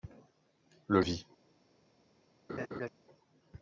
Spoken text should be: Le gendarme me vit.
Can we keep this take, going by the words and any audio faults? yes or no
no